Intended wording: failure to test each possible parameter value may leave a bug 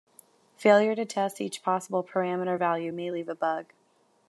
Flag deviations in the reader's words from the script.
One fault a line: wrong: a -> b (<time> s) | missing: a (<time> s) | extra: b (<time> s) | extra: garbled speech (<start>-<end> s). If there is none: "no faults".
no faults